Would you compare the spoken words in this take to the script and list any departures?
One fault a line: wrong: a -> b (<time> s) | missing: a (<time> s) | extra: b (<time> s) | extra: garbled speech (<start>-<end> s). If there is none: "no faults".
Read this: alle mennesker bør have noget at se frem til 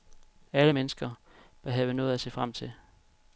no faults